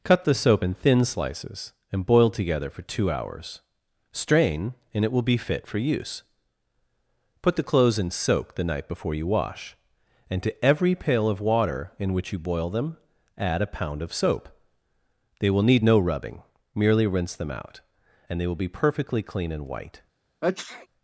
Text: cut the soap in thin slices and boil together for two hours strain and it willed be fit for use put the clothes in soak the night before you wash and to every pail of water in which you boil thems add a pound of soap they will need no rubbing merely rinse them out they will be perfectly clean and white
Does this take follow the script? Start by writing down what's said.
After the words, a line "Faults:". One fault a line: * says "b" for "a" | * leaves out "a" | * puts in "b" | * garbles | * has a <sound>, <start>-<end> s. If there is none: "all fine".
cut the soap in thin slices and boil together for two hours strain and it will be fit for use put the clothes in soak the night before you wash and to every pail of water in which you boil them add a pound of soap they will need no rubbing merely rinse them out and they will be perfectly clean and white
Faults:
* says "will" for "willed"
* says "them" for "thems"
* puts in "and"
* has a sneeze, 20.4-20.9 s